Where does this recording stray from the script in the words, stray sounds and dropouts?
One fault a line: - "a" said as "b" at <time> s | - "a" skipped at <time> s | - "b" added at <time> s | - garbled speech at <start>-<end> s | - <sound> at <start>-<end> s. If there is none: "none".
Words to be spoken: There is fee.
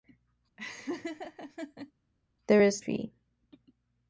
- laugh at 0.6-1.9 s